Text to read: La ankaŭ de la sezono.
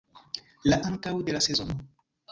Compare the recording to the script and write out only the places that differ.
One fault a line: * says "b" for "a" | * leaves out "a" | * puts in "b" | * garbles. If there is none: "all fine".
all fine